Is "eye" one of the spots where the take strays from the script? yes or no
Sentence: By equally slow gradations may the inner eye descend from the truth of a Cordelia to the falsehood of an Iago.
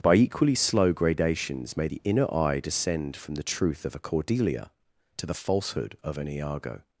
no